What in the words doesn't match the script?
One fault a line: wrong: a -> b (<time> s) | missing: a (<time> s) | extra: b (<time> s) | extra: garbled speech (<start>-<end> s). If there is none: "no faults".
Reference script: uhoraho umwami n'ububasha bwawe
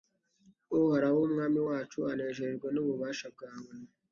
extra: wacu anejejwe (1.7 s)